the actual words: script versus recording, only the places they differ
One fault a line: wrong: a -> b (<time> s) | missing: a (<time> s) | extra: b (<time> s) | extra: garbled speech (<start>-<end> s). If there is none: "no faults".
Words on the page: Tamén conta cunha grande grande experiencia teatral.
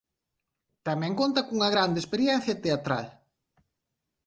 missing: grande (2.0 s)